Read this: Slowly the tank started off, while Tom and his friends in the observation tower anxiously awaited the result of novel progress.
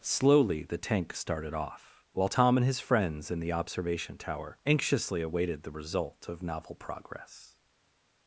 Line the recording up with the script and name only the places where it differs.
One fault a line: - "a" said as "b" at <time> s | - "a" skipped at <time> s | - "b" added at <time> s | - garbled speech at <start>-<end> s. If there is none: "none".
none